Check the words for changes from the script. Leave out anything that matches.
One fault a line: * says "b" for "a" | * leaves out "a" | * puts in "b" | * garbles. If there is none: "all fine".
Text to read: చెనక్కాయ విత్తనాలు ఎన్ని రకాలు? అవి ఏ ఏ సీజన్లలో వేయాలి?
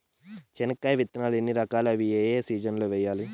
all fine